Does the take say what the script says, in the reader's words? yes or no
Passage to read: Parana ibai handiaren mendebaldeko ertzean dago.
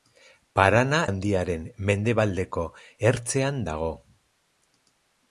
no